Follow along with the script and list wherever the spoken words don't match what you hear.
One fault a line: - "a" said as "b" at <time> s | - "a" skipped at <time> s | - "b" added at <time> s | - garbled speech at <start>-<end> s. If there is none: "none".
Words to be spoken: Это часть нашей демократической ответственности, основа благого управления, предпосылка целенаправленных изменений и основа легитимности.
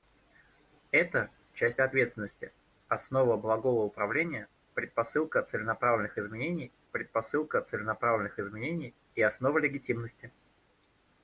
- "нашей демократической" skipped at 1.8 s
- "предпосылка целенаправленных изменений" added at 6.9 s